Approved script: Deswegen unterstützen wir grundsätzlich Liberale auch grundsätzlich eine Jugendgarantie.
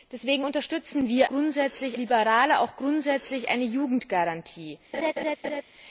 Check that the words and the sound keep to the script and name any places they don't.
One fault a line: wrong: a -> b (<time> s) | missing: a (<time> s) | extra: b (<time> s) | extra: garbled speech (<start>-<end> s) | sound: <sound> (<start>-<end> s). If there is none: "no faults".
sound: laugh (4.9-5.6 s)